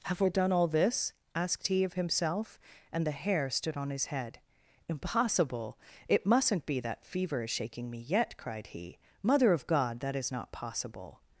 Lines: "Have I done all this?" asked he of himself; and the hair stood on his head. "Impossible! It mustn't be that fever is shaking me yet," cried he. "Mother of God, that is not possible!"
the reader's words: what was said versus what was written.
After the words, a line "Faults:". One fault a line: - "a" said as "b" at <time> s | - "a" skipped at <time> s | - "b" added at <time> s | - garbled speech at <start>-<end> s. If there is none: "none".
"Have I done all this?" asked he of himself; and the hair stood on his head. "Impossible! It mustn't be that fever is shaking me yet," cried he. "Mother of God, that is not possible!"
Faults:
none